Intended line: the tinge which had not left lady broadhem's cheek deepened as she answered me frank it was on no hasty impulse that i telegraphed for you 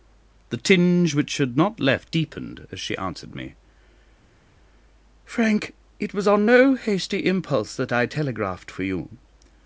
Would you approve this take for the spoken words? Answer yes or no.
no